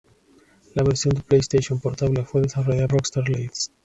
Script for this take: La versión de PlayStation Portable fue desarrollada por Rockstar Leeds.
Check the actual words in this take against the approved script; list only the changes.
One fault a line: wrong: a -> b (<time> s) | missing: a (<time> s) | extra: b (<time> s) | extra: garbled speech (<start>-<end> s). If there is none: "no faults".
missing: por (2.9 s)